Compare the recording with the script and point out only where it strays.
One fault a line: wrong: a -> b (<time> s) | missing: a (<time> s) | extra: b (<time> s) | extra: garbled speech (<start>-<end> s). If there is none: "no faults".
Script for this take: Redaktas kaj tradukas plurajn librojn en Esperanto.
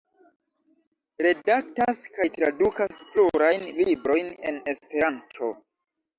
no faults